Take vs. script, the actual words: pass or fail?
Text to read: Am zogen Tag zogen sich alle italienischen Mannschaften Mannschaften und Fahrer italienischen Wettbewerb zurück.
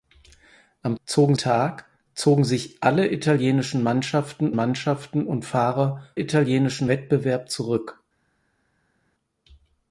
pass